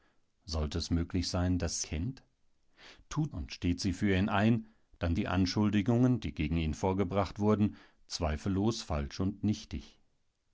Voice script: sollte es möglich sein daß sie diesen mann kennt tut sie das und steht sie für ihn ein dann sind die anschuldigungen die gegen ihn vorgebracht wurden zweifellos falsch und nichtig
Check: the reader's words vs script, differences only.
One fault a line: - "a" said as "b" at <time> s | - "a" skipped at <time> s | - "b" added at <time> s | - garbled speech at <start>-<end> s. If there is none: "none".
- "sie diesen mann" skipped at 1.8 s
- "sie das" skipped at 3.3 s
- "sind" skipped at 5.2 s